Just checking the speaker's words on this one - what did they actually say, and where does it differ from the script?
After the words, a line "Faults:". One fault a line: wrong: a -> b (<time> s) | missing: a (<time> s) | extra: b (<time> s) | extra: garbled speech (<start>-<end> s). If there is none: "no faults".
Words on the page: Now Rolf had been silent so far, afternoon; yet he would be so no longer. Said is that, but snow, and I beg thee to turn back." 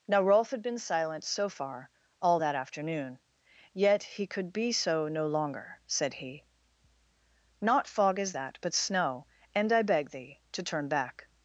Now Rolf had been silent so far, all that afternoon; yet he could be so no longer. Said he: "Not fog is that, but snow, and I beg thee to turn back."
Faults:
extra: all that (2.2 s)
wrong: would -> could (4.3 s)
extra: he Not fog (6.1 s)